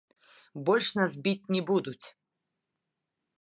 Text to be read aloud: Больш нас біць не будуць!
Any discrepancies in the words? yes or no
no